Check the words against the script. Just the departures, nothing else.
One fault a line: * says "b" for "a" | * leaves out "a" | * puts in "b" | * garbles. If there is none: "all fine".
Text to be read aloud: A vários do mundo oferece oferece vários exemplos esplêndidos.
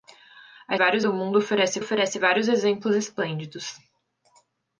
all fine